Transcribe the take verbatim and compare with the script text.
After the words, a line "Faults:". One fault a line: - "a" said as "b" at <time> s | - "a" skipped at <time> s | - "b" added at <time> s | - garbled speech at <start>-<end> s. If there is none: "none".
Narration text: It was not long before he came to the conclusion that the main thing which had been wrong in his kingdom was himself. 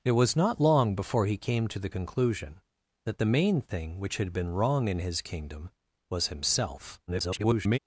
It was not long before he came to the conclusion that the main thing which had been wrong in his kingdom was himself. [garbled]
Faults:
- garbled speech at 7.1-7.8 s